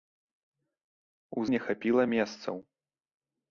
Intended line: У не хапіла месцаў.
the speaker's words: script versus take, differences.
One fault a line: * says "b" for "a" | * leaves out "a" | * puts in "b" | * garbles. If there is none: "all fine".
all fine